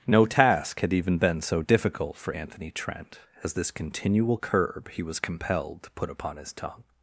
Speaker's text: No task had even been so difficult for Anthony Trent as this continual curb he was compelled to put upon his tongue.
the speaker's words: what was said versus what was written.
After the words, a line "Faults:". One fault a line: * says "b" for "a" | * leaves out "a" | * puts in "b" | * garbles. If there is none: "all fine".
No task had even been so difficult for Anthony Trent as this continual curb he was compelled to put upon his tongue.
Faults:
all fine